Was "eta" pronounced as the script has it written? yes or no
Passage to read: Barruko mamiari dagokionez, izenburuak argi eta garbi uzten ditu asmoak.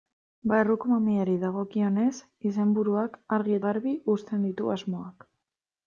no